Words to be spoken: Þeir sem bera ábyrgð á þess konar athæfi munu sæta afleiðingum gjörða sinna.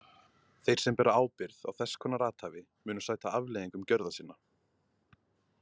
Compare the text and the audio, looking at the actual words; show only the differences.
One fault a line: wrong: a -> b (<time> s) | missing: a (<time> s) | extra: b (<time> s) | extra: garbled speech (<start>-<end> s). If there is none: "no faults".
no faults